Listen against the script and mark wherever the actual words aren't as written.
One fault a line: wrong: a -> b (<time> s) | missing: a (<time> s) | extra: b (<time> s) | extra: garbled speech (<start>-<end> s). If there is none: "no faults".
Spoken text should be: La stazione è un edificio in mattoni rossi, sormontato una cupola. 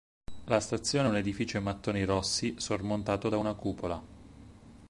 extra: da (3.3 s)